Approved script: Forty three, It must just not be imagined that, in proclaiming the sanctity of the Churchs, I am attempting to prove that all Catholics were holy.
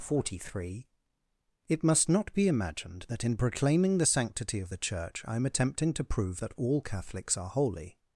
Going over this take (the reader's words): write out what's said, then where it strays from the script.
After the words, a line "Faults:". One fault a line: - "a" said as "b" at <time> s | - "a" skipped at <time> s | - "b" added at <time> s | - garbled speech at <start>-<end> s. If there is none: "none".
Forty three, It must not be imagined that, in proclaiming the sanctity of the Church, I am attempting to prove that all Catholics are holy.
Faults:
- "just" skipped at 2.1 s
- "Churchs" said as "Church" at 4.8 s
- "were" said as "are" at 7.3 s